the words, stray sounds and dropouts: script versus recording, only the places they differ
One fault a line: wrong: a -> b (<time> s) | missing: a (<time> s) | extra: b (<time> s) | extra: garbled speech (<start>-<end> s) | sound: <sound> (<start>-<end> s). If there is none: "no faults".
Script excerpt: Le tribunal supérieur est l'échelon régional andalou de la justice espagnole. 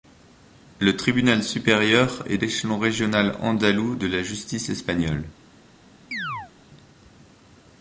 sound: chirp (6.1-6.5 s)